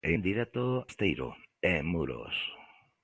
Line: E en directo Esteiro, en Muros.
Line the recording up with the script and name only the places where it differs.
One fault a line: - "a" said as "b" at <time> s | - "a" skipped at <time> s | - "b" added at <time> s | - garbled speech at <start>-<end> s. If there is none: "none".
none